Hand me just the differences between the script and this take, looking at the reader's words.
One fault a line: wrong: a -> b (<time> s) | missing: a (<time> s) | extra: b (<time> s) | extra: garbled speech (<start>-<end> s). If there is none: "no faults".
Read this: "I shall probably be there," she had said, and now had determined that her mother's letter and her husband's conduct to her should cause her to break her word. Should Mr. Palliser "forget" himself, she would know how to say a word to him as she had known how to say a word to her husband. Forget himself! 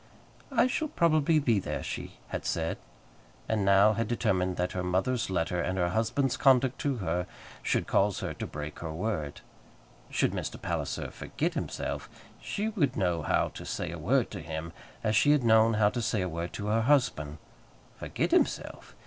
no faults